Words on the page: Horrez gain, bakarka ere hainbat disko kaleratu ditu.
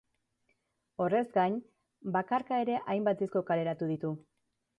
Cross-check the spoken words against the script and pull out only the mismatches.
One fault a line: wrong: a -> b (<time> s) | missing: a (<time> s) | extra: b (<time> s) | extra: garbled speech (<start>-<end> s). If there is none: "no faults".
no faults